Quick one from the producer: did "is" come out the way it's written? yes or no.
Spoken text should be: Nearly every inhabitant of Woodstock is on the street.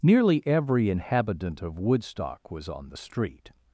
no